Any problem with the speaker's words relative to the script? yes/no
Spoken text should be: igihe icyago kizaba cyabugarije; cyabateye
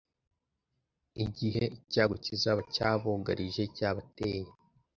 no